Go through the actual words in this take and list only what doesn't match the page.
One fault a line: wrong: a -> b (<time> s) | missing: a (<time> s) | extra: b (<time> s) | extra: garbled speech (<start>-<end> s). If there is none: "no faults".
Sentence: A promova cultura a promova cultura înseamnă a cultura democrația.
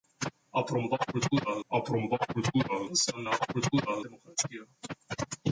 no faults